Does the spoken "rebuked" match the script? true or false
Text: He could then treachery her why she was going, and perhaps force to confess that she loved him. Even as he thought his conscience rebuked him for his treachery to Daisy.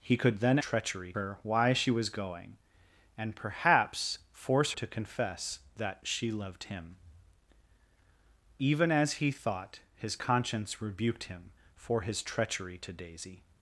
true